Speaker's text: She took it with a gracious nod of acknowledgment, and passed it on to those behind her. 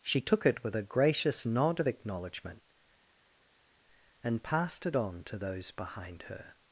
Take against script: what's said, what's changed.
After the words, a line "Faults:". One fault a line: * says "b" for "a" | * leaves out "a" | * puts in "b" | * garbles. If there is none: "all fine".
She took it with a gracious nod of acknowledgment, and passed it on to those behind her.
Faults:
all fine